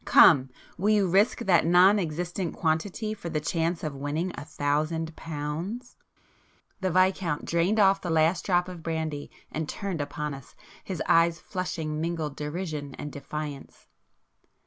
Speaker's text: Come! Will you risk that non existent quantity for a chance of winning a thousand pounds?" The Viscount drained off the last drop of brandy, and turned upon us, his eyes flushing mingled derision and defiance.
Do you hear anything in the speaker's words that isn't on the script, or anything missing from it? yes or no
yes